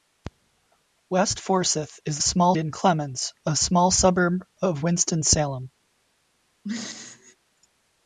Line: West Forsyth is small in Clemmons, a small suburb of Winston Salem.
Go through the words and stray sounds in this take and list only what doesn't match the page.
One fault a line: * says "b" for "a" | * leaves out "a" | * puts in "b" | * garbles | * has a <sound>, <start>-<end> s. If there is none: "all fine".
* has a throat clearing, 6.6-7.4 s